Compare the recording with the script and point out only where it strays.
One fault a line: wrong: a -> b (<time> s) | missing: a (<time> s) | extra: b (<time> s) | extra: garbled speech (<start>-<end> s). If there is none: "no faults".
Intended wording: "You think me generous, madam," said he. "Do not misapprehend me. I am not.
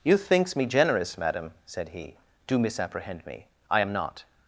wrong: think -> thinks (0.2 s)
missing: not (2.6 s)